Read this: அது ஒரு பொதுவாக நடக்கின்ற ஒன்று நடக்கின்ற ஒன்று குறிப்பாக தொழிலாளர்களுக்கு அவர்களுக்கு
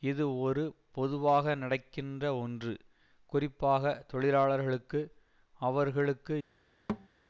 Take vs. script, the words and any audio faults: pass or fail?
fail